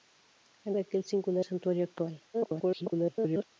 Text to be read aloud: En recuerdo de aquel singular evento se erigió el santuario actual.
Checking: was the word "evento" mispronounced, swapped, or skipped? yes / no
yes